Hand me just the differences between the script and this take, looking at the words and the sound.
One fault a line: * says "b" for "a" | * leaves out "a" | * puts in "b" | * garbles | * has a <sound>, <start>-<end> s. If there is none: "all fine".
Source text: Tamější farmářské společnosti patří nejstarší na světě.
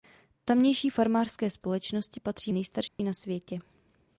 * has a dropout, 2.9-3.0 s